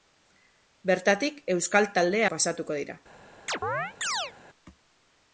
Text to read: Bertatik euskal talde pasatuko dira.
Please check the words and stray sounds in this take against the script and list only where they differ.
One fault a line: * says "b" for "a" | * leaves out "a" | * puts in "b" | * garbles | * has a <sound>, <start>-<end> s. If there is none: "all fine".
* has a chirp, 3.5-4.3 s